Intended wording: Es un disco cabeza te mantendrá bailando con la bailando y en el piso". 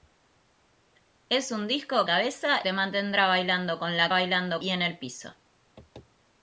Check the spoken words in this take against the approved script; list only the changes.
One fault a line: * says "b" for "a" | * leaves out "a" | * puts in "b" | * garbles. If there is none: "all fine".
all fine